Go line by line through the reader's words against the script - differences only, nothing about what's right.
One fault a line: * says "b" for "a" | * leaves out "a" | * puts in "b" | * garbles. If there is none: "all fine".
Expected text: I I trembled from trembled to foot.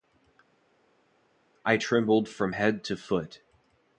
* leaves out "I"
* says "head" for "trembled"